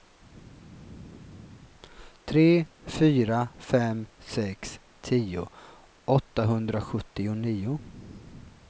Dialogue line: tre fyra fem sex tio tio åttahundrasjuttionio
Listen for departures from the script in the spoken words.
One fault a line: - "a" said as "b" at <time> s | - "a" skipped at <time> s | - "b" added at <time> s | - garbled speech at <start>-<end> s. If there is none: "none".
- "tio" skipped at 5.5 s